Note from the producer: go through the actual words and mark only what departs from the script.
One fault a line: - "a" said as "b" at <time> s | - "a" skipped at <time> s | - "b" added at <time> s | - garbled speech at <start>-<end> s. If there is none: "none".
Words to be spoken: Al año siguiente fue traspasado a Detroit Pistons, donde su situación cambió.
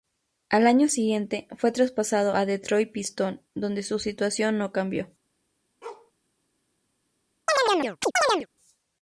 - "no" added at 4.6 s